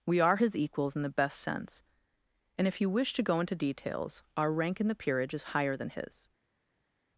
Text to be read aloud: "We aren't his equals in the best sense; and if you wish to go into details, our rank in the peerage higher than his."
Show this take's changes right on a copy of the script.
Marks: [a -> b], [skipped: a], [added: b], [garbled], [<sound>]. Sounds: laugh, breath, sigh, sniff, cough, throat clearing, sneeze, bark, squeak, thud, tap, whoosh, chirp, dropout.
"We [aren't -> are] his equals in the best sense; and if you wish to go into details, our rank in the peerage [added: is] higher than his."